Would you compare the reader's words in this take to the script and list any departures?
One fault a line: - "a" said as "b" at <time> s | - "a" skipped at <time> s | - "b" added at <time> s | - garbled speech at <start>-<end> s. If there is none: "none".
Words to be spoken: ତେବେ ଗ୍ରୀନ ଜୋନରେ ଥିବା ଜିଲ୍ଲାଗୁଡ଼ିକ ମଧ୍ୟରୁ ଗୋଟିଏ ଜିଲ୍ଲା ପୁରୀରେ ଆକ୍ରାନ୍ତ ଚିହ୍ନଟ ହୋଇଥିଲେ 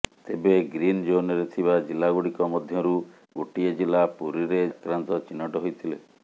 none